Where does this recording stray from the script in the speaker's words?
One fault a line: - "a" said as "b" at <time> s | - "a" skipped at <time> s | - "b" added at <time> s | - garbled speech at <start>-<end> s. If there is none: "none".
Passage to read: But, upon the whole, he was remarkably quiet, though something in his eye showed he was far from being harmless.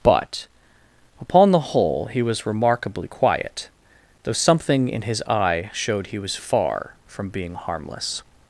none